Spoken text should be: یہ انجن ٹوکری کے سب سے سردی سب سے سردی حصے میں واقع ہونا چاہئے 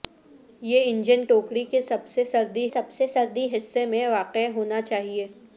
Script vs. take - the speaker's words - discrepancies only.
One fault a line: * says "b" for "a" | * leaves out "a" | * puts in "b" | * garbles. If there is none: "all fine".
all fine